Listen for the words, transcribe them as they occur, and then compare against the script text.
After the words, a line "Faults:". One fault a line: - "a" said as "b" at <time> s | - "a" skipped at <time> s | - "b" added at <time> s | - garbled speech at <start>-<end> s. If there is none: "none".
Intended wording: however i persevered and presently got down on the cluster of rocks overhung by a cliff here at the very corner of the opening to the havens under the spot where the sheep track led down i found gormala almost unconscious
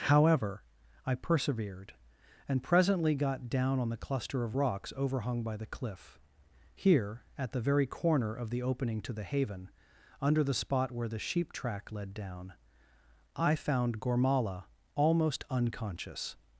however i persevered and presently got down on the cluster of rocks overhung by the cliff here at the very corner of the opening to the haven under the spot where the sheep track led down i found gormala almost unconscious
Faults:
- "a" said as "the" at 5.6 s
- "havens" said as "haven" at 9.2 s